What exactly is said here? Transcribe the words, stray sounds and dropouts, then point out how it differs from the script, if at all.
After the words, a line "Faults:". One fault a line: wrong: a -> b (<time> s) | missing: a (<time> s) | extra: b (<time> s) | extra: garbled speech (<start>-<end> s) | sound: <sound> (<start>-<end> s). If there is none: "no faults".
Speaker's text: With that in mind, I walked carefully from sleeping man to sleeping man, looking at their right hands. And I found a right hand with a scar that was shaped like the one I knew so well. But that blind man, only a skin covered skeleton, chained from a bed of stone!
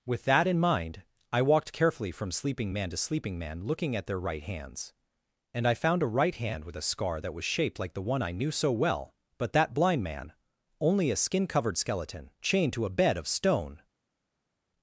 With that in mind, I walked carefully from sleeping man to sleeping man, looking at their right hands. And I found a right hand with a scar that was shaped like the one I knew so well. But that blind man, only a skin covered skeleton, chained to a bed of stone!
Faults:
wrong: from -> to (12.7 s)